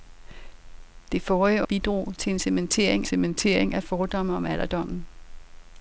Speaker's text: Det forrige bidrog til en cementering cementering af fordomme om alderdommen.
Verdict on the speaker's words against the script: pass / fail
pass